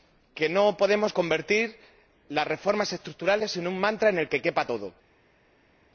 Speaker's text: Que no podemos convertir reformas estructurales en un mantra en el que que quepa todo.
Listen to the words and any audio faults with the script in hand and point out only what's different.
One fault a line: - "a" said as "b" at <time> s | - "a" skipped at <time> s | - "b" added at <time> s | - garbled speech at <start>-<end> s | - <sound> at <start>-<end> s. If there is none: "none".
- "las" added at 2.3 s
- "que" skipped at 4.4 s